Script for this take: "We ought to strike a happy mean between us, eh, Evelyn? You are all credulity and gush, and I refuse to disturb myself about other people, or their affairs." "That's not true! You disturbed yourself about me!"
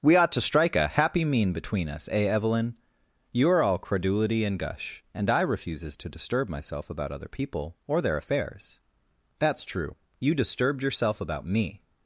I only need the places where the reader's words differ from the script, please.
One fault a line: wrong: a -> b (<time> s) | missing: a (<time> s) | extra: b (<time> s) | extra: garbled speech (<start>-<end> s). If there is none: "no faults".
wrong: refuse -> refuses (5.4 s)
missing: not (9.6 s)